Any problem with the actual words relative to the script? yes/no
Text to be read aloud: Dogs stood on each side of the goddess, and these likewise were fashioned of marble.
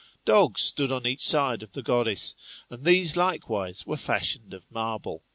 no